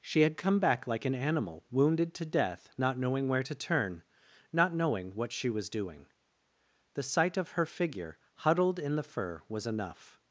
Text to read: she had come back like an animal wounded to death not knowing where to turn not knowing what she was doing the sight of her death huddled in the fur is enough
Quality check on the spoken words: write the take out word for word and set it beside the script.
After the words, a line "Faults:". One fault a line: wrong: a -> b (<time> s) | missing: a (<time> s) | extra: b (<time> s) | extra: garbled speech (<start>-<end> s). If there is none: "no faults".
she had come back like an animal wounded to death not knowing where to turn not knowing what she was doing the sight of her figure huddled in the fur was enough
Faults:
wrong: death -> figure (7.6 s)
wrong: is -> was (9.5 s)